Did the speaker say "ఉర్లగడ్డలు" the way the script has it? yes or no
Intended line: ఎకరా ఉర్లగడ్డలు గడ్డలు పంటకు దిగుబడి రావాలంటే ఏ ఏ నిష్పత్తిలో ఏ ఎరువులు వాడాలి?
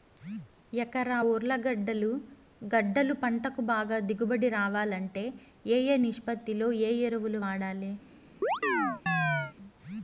yes